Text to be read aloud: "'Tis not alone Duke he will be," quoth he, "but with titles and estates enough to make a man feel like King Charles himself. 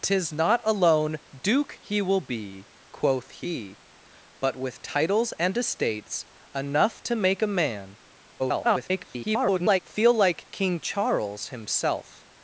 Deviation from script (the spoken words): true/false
true